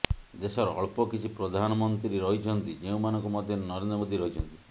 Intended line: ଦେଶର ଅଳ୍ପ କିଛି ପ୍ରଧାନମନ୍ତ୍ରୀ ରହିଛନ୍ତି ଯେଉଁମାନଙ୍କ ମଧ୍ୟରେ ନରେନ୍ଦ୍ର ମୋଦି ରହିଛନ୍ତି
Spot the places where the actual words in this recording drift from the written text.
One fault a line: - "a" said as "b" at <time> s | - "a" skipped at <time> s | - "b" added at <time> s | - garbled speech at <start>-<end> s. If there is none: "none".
none